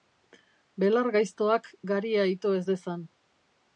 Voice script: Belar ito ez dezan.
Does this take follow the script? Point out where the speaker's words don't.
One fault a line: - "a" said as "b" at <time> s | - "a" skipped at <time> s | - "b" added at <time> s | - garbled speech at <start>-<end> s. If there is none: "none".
- "gaiztoak garia" added at 1.1 s